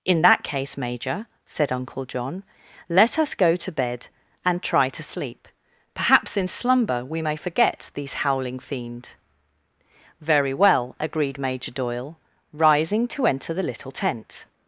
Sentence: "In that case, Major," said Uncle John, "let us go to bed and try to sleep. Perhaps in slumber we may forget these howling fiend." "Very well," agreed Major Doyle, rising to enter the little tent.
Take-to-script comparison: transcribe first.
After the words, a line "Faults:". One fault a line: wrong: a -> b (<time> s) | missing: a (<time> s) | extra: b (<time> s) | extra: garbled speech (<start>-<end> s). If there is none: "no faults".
"In that case, Major," said Uncle John, "let us go to bed and try to sleep. Perhaps in slumber we may forget these howling fiend." "Very well," agreed Major Doyle, rising to enter the little tent.
Faults:
no faults